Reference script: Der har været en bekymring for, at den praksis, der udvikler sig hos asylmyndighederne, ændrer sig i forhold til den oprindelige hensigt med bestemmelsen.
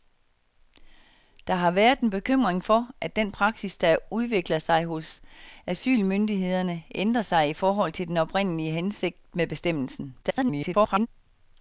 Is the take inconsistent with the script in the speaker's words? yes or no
yes